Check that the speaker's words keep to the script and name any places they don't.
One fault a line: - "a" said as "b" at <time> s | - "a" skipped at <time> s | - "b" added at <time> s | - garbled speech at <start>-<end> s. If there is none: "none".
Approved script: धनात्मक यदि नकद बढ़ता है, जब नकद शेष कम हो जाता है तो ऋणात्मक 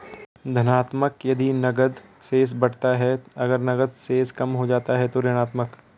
- "शेष" added at 2.3 s
- "जब" said as "अगर" at 3.4 s